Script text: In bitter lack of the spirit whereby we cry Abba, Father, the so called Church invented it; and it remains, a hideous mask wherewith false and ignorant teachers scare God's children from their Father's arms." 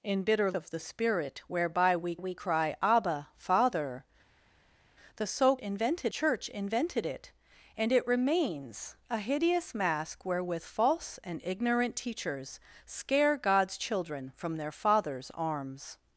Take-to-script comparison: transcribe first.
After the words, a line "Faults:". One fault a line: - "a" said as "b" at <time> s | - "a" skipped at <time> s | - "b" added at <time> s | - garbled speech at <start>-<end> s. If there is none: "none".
In bitter of the spirit whereby we we cry Abba, Father, the so invented Church invented it; and it remains, a hideous mask wherewith false and ignorant teachers scare God's children from their Father's arms."
Faults:
- "lack" skipped at 0.5 s
- "we" added at 2.2 s
- "called" said as "invented" at 5.6 s